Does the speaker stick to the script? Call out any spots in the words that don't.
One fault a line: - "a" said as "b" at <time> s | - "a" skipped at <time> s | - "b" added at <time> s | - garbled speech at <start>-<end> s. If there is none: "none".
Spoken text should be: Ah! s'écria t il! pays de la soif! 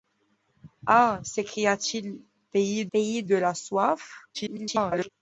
- "pays" added at 2.9 s
- garbled speech at 4.3-5.1 s